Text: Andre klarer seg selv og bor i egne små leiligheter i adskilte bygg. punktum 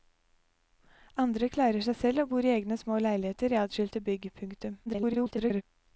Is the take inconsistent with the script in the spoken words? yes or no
yes